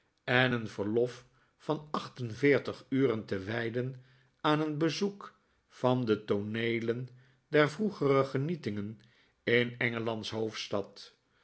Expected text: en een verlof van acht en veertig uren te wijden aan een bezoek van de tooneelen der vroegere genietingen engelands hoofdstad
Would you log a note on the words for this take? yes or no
yes